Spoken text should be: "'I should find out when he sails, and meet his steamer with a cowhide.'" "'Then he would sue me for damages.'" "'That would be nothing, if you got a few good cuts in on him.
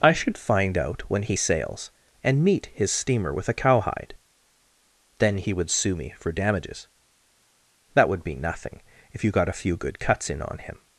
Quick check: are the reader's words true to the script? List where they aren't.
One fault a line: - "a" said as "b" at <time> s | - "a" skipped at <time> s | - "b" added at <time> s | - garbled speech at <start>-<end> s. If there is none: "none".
none